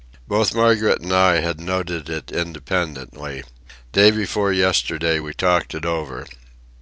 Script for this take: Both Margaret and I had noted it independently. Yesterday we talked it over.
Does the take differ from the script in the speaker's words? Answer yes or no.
yes